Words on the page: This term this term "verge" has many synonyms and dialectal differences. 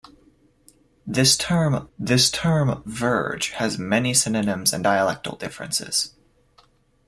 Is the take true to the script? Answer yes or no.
yes